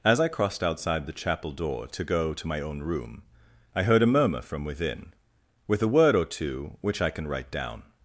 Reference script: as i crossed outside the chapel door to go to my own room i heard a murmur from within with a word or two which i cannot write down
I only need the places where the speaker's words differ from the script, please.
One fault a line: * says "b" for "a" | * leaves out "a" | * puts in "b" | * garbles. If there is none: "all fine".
* says "can" for "cannot"